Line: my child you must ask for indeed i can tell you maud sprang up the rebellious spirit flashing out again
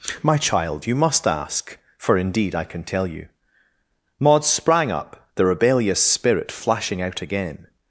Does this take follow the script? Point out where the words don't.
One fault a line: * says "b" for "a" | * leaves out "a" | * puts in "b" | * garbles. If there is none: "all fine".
all fine